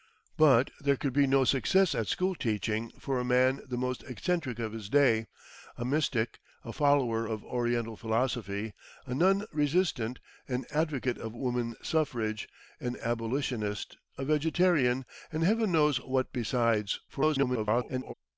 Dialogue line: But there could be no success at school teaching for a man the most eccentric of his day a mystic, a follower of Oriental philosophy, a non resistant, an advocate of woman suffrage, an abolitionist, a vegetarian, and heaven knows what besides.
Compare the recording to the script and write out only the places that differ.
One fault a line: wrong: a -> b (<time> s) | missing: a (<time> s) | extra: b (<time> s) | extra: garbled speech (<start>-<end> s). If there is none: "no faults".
extra: garbled speech (17.1-18.1 s)